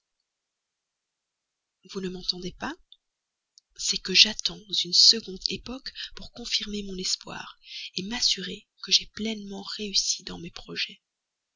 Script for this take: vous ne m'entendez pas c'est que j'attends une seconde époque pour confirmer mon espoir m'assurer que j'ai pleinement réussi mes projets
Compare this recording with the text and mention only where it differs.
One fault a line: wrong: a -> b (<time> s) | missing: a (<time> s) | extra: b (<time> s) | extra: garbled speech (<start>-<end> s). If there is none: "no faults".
extra: dans (10.2 s)